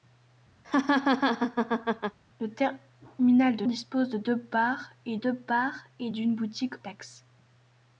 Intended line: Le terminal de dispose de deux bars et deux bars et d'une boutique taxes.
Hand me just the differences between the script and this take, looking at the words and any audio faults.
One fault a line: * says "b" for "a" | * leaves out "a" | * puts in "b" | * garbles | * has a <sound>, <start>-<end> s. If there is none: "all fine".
* has a laugh, 0.6-2.2 s